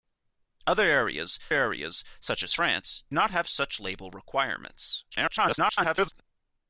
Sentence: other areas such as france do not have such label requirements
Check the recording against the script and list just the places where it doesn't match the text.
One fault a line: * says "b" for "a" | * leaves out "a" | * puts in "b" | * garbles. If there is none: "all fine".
* puts in "areas"
* leaves out "do"
* garbles